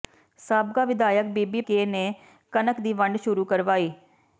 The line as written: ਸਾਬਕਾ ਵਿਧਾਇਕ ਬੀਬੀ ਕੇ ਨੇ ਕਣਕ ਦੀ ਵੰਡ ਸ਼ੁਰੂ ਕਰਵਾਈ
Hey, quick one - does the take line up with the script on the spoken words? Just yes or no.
yes